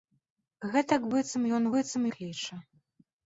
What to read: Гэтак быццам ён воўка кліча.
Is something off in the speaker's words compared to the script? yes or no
yes